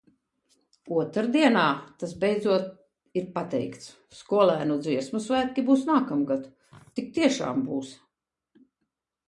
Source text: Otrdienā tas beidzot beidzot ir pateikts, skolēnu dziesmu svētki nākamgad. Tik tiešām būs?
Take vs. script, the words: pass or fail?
fail